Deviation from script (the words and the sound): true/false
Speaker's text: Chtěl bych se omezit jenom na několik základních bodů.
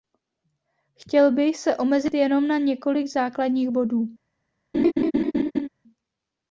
true